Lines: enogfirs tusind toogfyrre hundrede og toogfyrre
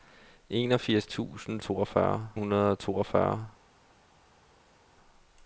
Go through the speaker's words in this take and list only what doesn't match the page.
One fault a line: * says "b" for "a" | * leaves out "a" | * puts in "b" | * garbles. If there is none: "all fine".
all fine